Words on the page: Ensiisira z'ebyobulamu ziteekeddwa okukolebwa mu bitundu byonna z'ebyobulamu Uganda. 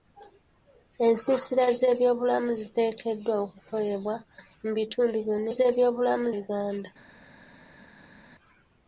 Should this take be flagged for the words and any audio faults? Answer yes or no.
no